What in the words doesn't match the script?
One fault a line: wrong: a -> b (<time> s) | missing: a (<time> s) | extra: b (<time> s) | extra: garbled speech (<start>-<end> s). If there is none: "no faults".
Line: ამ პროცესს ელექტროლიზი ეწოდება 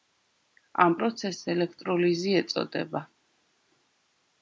no faults